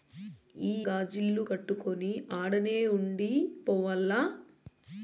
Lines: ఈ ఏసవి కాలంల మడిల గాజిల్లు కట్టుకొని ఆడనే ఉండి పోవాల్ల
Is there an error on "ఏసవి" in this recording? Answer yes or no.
yes